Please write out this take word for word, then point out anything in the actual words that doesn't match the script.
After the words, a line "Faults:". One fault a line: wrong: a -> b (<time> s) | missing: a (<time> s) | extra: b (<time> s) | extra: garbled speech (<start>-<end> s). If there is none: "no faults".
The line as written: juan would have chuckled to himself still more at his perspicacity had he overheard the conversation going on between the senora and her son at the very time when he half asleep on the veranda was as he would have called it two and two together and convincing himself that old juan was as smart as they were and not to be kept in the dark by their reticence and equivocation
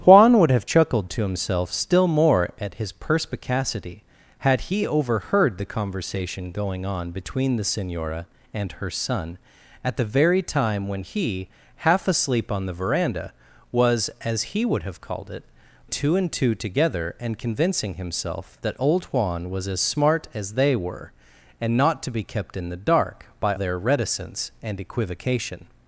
juan would have chuckled to himself still more at his perspicacity had he overheard the conversation going on between the senora and her son at the very time when he half asleep on the veranda was as he would have called it two and two together and convincing himself that old juan was as smart as they were and not to be kept in the dark by their reticence and equivocation
Faults:
no faults